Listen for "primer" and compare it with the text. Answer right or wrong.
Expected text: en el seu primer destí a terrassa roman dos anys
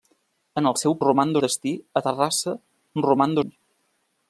wrong